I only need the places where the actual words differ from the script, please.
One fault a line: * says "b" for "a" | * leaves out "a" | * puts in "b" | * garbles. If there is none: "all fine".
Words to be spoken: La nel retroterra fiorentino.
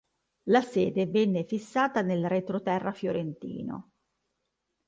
* puts in "sede venne fissata"